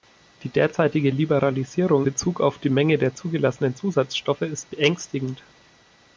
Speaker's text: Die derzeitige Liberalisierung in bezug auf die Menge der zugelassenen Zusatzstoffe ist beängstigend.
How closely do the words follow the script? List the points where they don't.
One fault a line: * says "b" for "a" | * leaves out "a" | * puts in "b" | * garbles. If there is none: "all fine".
* leaves out "in"